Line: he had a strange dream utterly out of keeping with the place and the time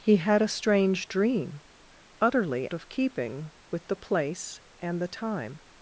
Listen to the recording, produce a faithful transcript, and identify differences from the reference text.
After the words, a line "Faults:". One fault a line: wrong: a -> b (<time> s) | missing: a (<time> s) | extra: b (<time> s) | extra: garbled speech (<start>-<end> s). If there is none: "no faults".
he had a strange dream utterly of keeping with the place and the time
Faults:
missing: out (2.7 s)